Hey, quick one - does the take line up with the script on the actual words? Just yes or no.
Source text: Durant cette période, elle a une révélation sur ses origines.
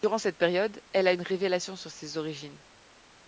yes